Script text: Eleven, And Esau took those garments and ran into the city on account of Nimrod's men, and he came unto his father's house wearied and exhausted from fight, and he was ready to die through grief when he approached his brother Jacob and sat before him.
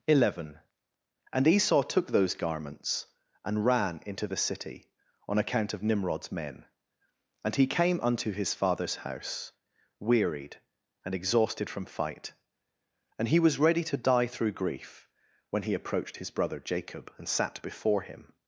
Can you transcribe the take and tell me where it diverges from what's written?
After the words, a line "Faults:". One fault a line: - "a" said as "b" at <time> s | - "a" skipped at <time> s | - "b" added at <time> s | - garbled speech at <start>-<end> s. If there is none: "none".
Eleven, And Esau took those garments and ran into the city on account of Nimrod's men, and he came unto his father's house wearied and exhausted from fight, and he was ready to die through grief when he approached his brother Jacob and sat before him.
Faults:
none